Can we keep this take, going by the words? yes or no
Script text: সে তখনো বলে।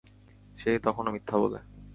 no